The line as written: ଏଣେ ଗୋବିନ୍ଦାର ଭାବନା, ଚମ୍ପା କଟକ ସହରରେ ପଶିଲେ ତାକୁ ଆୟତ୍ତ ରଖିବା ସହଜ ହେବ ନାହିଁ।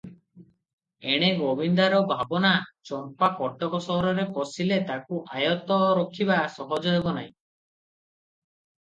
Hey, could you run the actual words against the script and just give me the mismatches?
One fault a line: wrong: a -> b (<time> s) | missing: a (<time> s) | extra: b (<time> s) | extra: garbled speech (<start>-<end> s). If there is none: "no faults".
no faults